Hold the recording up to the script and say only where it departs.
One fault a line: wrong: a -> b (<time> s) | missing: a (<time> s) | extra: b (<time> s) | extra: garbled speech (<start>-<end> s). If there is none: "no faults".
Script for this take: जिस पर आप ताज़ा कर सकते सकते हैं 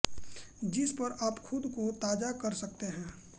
extra: खुद को (1.4 s)
missing: सकते (2.9 s)